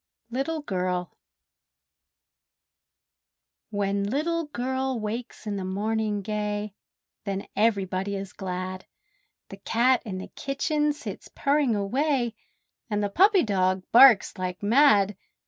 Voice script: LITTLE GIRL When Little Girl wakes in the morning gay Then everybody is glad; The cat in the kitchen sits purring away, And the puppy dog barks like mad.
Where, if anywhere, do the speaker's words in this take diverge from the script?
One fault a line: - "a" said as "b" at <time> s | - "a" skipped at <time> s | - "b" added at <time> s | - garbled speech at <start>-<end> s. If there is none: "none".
none